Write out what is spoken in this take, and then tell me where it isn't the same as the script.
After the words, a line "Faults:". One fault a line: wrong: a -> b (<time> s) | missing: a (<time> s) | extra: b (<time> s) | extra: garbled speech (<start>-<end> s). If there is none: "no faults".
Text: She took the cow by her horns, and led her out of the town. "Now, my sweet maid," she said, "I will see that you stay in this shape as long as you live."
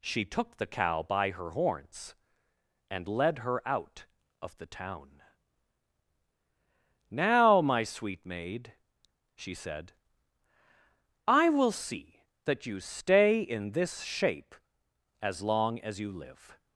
She took the cow by her horns, and led her out of the town. "Now, my sweet maid," she said, "I will see that you stay in this shape as long as you live."
Faults:
no faults